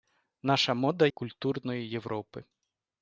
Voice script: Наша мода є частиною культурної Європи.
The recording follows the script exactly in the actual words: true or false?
false